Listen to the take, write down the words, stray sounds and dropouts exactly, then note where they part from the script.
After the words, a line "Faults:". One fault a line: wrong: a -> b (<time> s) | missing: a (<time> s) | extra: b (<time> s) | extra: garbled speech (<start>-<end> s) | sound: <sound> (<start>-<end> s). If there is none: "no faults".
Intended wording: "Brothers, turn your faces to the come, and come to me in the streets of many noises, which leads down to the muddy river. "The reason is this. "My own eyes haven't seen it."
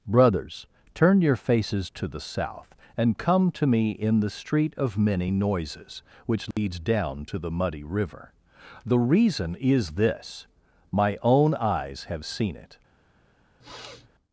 "Brothers, turn your faces to the south, and come to me in the street of many noises, which leads down to the muddy river. "The reason is this. "My own eyes have seen it."
Faults:
wrong: come -> south (2.2 s)
wrong: streets -> street (4.3 s)
sound: dropout (6.5-6.6 s)
wrong: haven't -> have (12.0 s)
sound: sniff (13.6-14.1 s)